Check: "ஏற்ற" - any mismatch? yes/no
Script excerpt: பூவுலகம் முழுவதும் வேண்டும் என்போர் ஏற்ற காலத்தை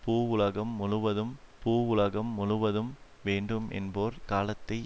yes